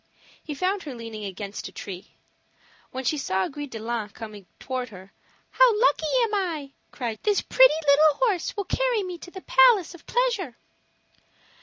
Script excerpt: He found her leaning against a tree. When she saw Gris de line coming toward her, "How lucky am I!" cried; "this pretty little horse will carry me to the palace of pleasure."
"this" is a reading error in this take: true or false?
false